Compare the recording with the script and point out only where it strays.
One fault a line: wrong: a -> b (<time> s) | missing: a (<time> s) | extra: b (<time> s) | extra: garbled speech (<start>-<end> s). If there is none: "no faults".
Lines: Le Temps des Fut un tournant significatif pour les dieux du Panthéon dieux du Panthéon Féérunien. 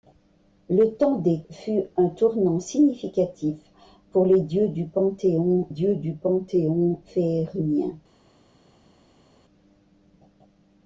no faults